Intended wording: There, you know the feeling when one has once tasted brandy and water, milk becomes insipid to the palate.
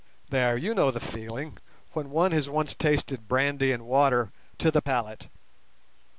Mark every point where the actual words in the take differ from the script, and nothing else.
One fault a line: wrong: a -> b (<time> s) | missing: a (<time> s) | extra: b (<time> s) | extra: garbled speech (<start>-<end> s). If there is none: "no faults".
missing: milk becomes insipid (4.3 s)